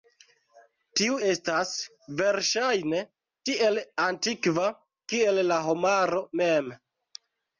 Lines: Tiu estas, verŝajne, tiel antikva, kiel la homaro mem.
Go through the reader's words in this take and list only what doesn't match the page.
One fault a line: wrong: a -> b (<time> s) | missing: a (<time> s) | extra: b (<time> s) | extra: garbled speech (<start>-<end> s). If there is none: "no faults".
no faults